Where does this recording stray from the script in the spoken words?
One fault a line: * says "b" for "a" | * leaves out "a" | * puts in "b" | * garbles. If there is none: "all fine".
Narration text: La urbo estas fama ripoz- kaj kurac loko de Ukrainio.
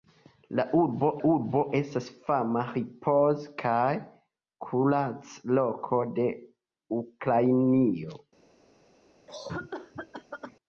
* puts in "urbo"